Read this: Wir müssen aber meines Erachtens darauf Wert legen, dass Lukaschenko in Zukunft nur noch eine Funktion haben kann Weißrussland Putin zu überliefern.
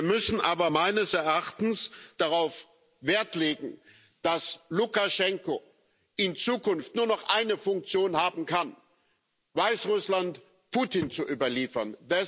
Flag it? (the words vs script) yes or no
no